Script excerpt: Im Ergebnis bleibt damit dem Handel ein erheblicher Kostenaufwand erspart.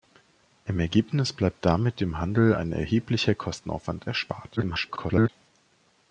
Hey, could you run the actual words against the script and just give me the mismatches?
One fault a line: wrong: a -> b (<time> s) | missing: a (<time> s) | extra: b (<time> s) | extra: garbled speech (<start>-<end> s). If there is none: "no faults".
extra: garbled speech (4.6-5.3 s)